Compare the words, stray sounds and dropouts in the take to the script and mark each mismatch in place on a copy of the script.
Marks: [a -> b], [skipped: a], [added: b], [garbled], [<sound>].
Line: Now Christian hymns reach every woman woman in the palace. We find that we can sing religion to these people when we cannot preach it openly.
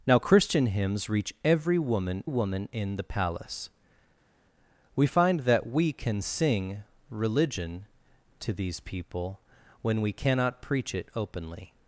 Now Christian hymns reach every woman woman in the palace. We find that we can sing religion to these people when we cannot preach it openly.